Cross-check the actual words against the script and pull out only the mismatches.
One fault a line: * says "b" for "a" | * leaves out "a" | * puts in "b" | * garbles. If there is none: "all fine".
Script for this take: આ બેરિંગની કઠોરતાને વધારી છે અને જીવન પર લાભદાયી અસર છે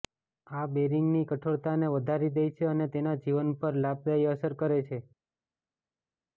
* puts in "દે"
* puts in "તેના"
* puts in "કરે"